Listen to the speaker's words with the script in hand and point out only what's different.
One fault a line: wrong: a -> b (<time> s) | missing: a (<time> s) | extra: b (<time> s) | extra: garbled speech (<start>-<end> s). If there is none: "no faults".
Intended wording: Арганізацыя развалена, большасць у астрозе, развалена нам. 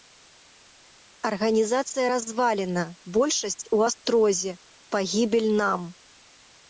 wrong: развалена -> пагібель (5.0 s)